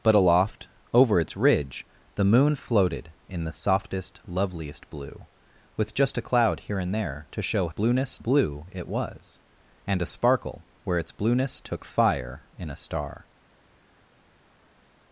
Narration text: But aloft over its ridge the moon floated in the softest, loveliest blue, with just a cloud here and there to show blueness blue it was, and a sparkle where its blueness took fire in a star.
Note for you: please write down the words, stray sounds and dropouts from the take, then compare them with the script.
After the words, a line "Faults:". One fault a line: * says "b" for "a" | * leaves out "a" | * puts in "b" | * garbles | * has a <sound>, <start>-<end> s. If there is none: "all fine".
But aloft over its ridge the moon floated in the softest, loveliest blue, with just a cloud here and there to show blueness blue it was, and a sparkle where its blueness took fire in a star.
Faults:
all fine